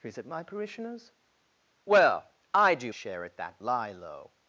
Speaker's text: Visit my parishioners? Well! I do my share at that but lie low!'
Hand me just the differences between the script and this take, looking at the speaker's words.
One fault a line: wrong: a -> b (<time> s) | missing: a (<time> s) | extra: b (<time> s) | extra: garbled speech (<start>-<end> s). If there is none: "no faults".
missing: my (2.9 s)
missing: but (3.6 s)